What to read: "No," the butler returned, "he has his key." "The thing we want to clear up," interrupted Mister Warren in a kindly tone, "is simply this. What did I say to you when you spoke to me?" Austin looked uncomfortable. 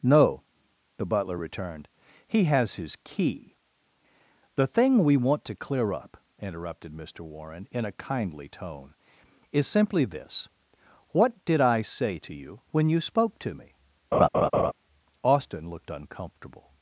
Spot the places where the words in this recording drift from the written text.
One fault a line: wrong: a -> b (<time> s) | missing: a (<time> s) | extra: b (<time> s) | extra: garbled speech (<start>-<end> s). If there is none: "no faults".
no faults